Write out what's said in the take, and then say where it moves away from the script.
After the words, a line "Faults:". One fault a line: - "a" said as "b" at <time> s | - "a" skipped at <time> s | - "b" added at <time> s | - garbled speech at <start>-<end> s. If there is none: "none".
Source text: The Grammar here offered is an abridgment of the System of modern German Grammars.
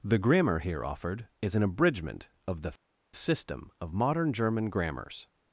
The Grammar here offered is an abridgment of the System of modern German Grammars.
Faults:
none